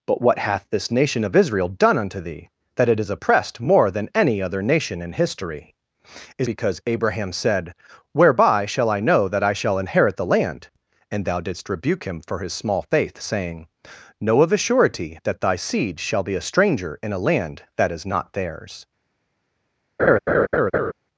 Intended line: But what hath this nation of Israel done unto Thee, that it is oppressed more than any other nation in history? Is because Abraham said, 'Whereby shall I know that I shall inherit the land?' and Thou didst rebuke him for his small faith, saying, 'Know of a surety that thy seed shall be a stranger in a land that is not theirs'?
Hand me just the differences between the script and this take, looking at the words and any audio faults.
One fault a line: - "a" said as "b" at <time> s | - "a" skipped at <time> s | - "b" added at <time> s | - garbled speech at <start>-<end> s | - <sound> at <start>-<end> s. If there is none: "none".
- laugh at 20.0-20.9 s